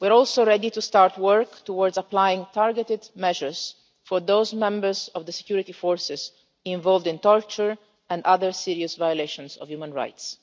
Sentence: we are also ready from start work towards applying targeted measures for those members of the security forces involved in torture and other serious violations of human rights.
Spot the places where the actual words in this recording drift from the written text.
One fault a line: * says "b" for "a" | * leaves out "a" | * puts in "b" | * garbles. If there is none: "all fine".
* says "to" for "from"